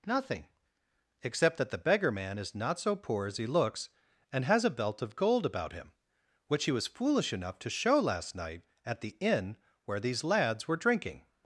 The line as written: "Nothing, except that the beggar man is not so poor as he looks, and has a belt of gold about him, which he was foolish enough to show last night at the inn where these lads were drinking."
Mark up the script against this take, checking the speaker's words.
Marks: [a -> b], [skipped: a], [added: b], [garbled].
"Nothing, except that the beggar man is not so poor as he looks, and has a belt of gold about him, which he was foolish enough to show last night at the inn where these lads were drinking."